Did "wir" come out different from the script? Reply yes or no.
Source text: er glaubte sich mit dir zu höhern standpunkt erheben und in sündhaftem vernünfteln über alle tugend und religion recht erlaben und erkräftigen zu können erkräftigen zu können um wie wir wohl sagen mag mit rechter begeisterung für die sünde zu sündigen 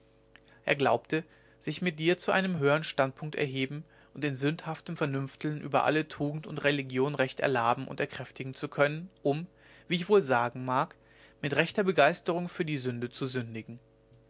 yes